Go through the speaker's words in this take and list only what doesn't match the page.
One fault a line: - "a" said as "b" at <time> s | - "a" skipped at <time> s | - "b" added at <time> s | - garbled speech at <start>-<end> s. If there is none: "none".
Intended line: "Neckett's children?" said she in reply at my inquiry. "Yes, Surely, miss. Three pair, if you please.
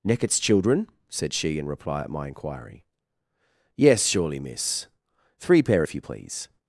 none